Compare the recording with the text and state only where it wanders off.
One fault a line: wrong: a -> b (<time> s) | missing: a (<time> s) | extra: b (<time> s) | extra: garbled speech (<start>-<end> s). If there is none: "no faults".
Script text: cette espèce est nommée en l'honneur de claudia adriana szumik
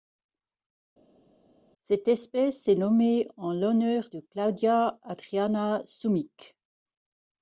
no faults